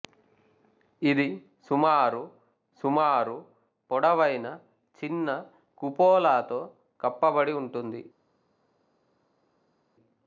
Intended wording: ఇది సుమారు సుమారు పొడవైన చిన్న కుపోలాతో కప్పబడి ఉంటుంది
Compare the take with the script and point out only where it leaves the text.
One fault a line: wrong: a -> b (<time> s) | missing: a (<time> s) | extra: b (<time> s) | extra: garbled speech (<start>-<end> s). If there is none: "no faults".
no faults